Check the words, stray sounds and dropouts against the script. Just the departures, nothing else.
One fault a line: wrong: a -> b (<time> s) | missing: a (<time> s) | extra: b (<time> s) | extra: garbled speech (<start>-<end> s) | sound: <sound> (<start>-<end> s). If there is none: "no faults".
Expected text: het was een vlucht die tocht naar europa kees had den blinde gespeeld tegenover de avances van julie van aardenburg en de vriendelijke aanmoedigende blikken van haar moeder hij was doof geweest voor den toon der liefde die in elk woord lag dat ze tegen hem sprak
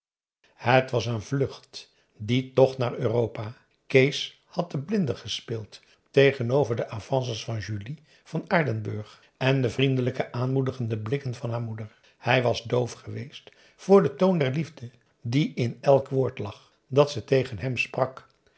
no faults